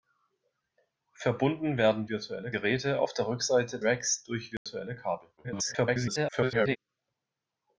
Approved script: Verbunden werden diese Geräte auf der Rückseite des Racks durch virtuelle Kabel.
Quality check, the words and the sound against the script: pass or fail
fail